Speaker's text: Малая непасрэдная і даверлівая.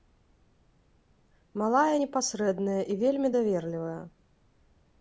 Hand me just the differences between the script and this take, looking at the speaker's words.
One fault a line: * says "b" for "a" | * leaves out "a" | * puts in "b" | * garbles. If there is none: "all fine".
* puts in "вельмі"